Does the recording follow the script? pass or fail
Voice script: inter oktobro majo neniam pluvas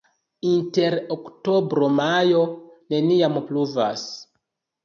pass